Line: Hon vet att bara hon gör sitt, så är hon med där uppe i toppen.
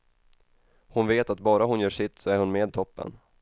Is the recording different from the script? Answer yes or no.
yes